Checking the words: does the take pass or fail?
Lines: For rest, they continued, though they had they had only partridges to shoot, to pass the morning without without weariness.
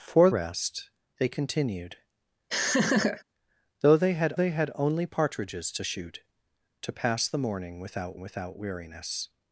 pass